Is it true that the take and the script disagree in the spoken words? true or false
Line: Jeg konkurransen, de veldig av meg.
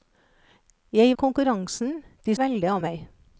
false